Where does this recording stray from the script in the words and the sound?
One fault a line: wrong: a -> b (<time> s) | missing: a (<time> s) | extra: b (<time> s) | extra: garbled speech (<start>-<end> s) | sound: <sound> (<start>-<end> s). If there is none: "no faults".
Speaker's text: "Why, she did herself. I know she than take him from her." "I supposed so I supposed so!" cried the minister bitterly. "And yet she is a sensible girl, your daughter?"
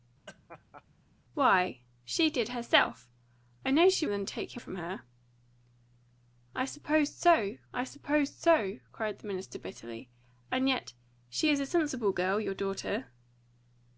sound: laugh (0.3-0.8 s)